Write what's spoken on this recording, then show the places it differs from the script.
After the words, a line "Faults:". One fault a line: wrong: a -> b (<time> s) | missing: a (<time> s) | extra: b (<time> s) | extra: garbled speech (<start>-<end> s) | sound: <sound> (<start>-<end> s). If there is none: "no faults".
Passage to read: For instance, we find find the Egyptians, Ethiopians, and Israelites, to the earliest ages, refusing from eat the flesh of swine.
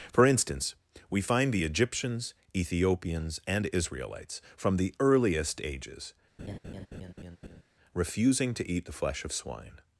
For instance, we find the Egyptians, Ethiopians, and Israelites, from the earliest ages, refusing to eat the flesh of swine.
Faults:
missing: find (1.5 s)
wrong: to -> from (4.6 s)
sound: laugh (6.4-7.6 s)
wrong: from -> to (8.5 s)